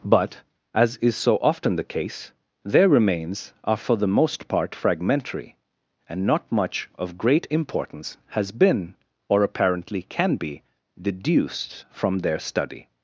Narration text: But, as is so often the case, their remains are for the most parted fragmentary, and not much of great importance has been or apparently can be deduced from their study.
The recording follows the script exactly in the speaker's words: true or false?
false